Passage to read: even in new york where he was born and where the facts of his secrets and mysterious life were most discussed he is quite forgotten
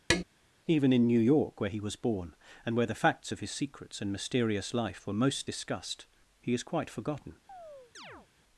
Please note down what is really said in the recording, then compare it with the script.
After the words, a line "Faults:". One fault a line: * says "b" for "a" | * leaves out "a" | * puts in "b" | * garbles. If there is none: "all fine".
even in new york where he was born and where the facts of his secrets and mysterious life were most discussed he is quite forgotten
Faults:
all fine